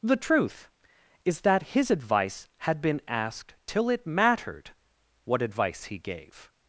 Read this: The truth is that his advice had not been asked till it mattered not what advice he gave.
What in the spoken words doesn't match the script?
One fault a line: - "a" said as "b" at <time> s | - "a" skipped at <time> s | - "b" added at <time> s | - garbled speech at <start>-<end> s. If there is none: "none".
- "not" skipped at 2.8 s
- "not" skipped at 4.7 s